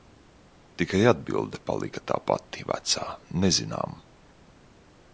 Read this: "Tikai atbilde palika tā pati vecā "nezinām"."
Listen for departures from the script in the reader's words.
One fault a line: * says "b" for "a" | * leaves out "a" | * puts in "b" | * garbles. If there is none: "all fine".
all fine